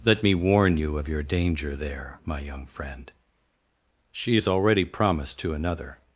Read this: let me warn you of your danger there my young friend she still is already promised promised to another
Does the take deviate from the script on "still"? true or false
true